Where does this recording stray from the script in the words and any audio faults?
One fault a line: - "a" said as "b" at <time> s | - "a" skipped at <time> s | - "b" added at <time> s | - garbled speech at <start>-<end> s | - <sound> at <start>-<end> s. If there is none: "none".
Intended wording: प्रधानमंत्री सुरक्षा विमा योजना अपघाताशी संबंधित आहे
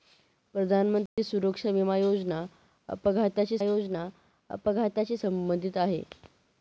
- dropout at 1.1-1.2 s
- "योजना अपघाताशी" added at 3.6 s